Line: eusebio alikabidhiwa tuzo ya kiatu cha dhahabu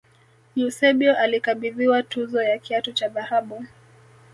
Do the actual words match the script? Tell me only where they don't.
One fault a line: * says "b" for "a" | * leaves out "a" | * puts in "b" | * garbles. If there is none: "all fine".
all fine